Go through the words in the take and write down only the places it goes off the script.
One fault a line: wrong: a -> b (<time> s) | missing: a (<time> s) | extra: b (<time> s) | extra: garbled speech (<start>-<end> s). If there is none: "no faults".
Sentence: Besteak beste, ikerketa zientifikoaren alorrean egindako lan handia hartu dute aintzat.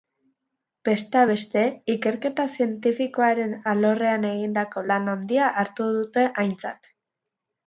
no faults